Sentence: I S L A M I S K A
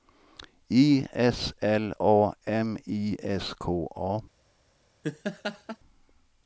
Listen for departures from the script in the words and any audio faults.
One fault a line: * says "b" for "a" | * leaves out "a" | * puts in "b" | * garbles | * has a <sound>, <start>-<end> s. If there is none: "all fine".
* has a laugh, 5.0-5.8 s